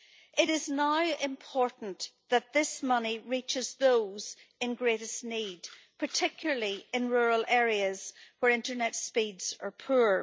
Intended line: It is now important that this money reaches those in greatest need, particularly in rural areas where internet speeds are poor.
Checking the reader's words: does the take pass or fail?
pass